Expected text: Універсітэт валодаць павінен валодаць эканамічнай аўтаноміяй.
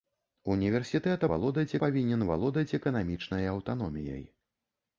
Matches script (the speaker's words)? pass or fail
pass